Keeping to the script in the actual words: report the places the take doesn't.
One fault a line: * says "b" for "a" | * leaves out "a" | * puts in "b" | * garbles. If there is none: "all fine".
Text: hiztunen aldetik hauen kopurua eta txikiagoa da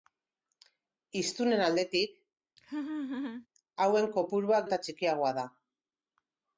all fine